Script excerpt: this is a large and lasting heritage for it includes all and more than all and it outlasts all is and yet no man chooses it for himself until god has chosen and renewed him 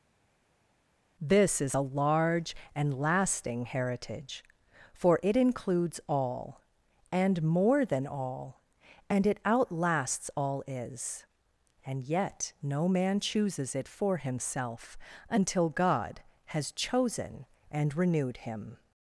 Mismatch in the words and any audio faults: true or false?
false